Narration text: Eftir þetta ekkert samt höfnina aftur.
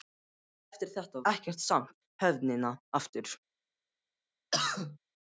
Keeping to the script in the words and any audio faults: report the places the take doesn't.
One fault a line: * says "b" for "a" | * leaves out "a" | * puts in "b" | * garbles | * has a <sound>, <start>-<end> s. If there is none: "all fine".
* has a cough, 4.5-5.0 s